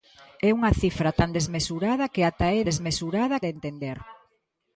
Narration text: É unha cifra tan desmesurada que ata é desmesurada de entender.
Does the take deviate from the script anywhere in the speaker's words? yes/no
no